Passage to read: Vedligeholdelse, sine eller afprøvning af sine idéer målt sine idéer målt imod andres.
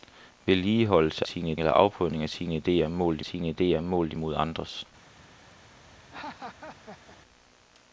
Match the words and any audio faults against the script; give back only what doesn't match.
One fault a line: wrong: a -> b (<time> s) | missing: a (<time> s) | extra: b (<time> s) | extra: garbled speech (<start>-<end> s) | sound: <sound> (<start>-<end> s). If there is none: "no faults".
sound: laugh (6.0-7.2 s)